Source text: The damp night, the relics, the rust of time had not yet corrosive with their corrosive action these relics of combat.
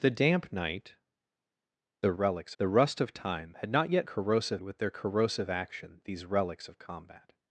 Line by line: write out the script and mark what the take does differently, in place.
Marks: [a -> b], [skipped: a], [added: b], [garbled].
The damp night, the relics, the rust of time had not yet corrosive with their corrosive action these relics of combat.